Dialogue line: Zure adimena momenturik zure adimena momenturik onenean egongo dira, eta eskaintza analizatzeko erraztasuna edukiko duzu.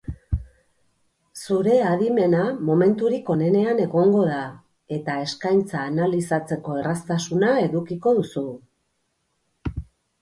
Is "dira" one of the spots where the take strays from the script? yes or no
yes